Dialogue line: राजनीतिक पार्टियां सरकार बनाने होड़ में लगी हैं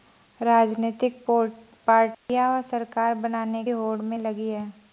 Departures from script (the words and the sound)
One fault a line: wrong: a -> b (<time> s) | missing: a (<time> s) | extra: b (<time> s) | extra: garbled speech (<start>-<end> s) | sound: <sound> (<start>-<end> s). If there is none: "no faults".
sound: dropout (2.1-2.3 s)